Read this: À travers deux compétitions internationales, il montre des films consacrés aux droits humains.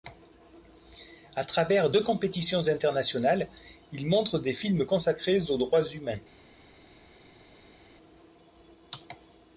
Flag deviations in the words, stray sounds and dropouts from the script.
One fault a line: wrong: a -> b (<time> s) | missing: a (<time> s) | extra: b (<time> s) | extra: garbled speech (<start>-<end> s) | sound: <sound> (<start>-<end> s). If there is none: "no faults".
no faults